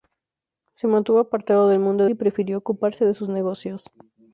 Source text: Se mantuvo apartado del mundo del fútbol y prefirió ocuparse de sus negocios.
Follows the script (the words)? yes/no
no